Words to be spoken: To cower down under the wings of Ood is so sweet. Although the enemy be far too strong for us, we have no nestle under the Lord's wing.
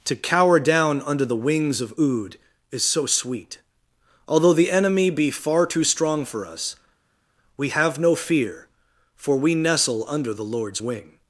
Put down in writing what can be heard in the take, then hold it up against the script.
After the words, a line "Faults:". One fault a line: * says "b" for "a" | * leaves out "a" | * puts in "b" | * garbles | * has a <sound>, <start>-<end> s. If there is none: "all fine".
To cower down under the wings of Ood is so sweet. Although the enemy be far too strong for us, we have no fear, for we nestle under the Lord's wing.
Faults:
* puts in "fear for we"